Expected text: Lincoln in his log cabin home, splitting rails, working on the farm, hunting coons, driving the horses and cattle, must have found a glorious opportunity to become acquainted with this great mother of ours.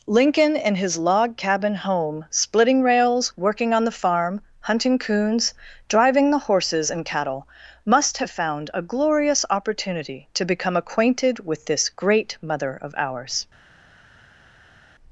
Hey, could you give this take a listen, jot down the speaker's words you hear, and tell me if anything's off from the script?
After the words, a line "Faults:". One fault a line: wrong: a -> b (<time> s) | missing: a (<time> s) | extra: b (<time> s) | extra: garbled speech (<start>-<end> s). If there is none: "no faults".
Lincoln in his log cabin home, splitting rails, working on the farm, hunting coons, driving the horses and cattle, must have found a glorious opportunity to become acquainted with this great mother of ours.
Faults:
no faults